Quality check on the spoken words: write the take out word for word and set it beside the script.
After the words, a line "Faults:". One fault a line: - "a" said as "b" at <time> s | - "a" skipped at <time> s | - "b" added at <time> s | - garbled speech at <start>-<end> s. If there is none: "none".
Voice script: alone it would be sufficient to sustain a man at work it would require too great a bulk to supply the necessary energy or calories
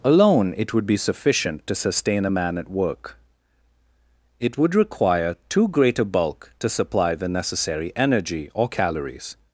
alone it would be sufficient to sustain a man at work it would require too great a bulk to supply the necessary energy or calories
Faults:
none